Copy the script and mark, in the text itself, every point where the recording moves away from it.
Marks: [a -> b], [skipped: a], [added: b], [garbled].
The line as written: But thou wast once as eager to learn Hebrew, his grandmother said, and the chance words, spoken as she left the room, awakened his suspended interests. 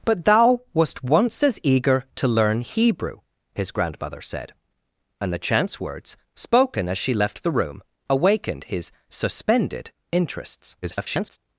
But thou wast once as eager to learn Hebrew, his grandmother said, and the chance words, spoken as she left the room, awakened his suspended interests. [garbled]